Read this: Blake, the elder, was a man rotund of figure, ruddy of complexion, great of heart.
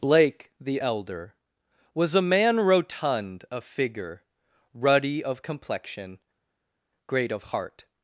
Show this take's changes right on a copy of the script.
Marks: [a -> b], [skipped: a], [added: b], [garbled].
Blake, the elder, was a man rotund of figure, ruddy of complexion, great of heart.